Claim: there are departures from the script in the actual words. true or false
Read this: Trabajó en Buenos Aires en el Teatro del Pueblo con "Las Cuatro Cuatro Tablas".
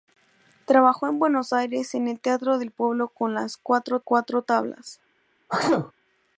false